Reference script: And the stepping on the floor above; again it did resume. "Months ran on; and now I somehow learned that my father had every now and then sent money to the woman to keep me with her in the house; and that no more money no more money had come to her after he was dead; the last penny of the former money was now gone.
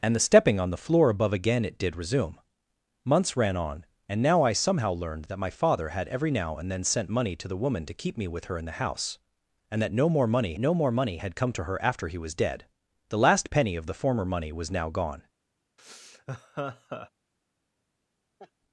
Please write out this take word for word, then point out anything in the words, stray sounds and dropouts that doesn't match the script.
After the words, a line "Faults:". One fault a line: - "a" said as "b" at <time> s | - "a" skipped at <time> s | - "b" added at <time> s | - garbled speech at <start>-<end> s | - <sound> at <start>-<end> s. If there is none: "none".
And the stepping on the floor above; again it did resume. "Months ran on; and now I somehow learned that my father had every now and then sent money to the woman to keep me with her in the house; and that no more money no more money had come to her after he was dead; the last penny of the former money was now gone.
Faults:
- laugh at 15.8-17.1 s
- laugh at 18.4-18.5 s